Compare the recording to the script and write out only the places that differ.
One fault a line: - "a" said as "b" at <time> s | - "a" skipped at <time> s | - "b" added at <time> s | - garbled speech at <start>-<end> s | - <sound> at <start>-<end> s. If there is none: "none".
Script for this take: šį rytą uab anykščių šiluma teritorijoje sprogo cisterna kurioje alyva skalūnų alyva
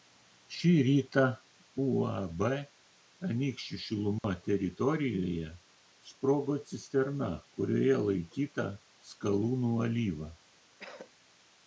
- dropout at 4.2-4.2 s
- "alyva" said as "laikyta" at 8.1 s
- cough at 10.8-11.1 s